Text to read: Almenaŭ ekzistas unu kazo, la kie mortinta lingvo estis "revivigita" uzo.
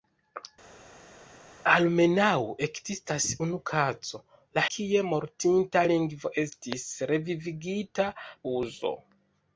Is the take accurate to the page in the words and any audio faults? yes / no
yes